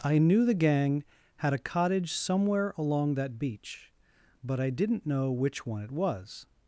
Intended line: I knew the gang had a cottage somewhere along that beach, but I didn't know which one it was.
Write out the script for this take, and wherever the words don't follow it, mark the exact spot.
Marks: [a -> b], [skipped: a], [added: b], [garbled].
I knew the gang had a cottage somewhere along that beach, but I didn't know which one it was.